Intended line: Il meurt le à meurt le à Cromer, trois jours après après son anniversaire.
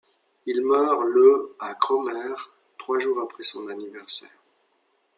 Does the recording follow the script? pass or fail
fail